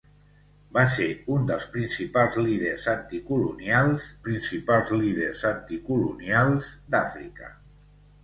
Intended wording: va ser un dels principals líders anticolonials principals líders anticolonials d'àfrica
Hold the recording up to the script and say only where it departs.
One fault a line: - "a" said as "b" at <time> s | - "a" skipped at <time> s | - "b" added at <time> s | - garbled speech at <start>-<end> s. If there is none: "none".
none